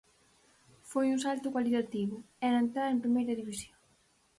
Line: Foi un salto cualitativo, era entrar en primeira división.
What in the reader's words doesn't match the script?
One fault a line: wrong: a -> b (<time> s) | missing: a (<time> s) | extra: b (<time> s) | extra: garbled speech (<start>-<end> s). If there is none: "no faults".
no faults